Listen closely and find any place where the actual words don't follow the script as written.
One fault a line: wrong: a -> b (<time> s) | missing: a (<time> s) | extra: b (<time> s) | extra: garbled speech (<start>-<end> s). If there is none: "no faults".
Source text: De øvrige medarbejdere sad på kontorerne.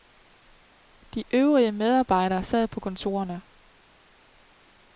no faults